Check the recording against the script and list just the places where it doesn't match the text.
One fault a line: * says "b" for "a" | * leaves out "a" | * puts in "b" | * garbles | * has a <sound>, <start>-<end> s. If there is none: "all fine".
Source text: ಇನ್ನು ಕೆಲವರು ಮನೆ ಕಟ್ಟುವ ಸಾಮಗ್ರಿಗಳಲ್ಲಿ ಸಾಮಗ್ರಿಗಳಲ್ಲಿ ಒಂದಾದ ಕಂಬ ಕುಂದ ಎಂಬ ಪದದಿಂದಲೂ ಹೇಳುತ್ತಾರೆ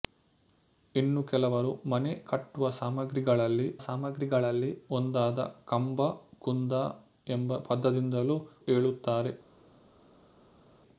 all fine